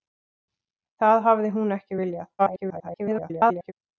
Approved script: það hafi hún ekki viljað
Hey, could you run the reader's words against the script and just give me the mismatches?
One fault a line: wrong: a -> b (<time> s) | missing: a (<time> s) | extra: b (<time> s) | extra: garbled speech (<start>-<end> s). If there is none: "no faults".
extra: garbled speech (2.4-3.7 s)